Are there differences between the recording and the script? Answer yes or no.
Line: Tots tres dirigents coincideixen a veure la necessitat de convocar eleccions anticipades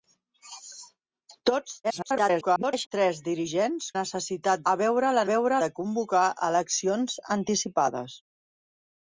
yes